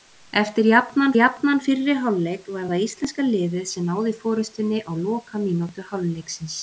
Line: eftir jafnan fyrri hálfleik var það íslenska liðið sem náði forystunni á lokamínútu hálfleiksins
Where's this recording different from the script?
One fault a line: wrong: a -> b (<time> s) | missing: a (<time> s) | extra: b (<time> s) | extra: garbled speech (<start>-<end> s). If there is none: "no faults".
extra: jafnan (1.2 s)